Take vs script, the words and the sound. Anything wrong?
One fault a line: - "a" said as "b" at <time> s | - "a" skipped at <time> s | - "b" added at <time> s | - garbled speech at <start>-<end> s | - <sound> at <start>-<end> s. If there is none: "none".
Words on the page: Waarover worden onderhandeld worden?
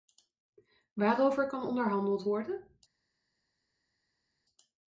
- "worden" said as "kan" at 1.5 s